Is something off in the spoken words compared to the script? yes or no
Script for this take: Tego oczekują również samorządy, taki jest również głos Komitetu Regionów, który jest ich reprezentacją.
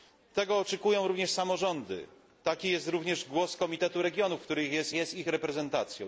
yes